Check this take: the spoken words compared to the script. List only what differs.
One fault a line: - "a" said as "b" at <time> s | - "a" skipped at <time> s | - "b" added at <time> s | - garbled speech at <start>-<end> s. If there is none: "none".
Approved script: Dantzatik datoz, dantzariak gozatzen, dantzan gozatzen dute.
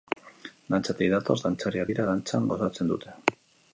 - "gozatzen" said as "dira" at 1.9 s